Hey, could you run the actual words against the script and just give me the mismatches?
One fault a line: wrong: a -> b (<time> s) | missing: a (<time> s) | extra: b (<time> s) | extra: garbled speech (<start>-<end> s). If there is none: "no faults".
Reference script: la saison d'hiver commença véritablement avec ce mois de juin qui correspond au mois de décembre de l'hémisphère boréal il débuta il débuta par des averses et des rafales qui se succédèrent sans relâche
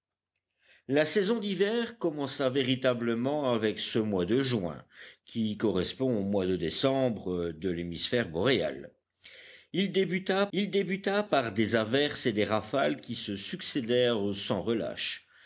no faults